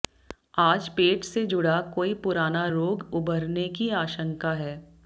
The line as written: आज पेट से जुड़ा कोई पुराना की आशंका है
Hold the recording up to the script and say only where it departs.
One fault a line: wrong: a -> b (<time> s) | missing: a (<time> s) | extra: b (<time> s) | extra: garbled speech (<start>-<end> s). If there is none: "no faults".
extra: रोग उभरने (2.7 s)